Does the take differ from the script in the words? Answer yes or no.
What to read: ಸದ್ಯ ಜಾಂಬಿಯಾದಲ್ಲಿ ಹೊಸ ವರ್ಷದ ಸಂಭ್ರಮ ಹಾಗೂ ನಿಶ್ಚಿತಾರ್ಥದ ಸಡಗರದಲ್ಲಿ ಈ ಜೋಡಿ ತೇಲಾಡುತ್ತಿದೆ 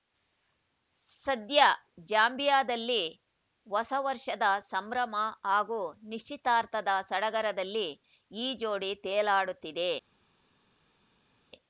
no